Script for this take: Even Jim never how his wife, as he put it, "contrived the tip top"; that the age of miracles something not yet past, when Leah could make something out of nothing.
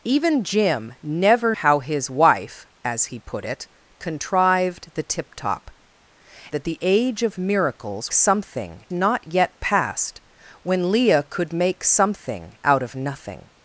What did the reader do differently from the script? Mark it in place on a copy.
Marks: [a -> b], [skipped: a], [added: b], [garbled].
Even Jim never how his wife, as he put it, "contrived the tip top"; that the age of miracles something not yet past, when Leah could make something out of nothing.